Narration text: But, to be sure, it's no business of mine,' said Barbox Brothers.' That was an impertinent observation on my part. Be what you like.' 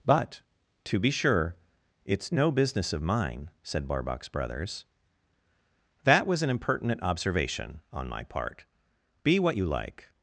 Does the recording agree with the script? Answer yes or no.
yes